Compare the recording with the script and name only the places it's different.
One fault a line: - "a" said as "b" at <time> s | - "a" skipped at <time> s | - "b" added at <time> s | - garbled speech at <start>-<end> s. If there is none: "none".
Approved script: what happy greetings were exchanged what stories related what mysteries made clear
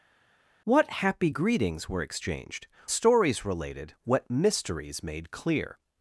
- "what" skipped at 2.7 s